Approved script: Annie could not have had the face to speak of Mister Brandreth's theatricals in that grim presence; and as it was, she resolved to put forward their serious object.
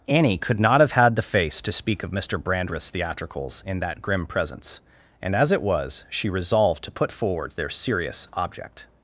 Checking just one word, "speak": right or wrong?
right